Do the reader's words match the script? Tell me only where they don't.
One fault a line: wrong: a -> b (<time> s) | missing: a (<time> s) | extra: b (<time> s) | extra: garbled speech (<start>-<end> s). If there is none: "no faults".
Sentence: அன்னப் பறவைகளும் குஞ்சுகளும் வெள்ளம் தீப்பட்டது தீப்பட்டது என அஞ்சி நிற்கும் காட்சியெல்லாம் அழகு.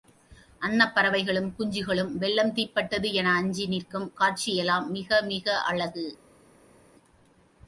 missing: தீப்பட்டது (3.1 s)
extra: மிக மிக (4.9 s)